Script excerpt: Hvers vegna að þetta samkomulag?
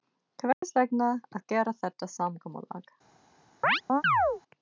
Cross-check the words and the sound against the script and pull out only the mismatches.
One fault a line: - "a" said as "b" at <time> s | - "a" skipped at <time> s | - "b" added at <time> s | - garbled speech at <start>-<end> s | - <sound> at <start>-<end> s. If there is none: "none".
- dropout at 0.5-0.6 s
- "gera" added at 1.5 s
- chirp at 3.6-4.4 s